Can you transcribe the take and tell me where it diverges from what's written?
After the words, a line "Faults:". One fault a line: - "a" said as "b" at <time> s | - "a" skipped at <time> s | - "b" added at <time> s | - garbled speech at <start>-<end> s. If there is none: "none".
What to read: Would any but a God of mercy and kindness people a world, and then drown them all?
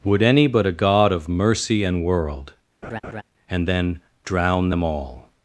Would any but a God of mercy and world, and then drown them all?
Faults:
- "kindness people a" skipped at 2.0 s